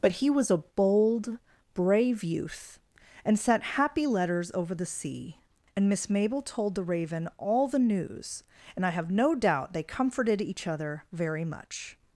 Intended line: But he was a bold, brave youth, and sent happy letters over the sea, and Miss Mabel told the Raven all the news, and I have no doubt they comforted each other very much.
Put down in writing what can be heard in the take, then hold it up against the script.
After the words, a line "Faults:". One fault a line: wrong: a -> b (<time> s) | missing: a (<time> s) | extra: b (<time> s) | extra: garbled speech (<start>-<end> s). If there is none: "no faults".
But he was a bold, brave youth, and sent happy letters over the sea, and Miss Mabel told the Raven all the news, and I have no doubt they comforted each other very much.
Faults:
no faults